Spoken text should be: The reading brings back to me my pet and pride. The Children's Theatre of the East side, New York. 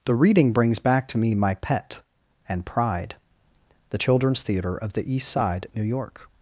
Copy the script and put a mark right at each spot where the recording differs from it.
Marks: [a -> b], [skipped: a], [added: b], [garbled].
The reading brings back to me my pet and pride. The Children's Theatre of the East side, New York.